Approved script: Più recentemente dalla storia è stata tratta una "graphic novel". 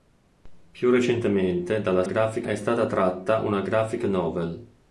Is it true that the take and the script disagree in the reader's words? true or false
true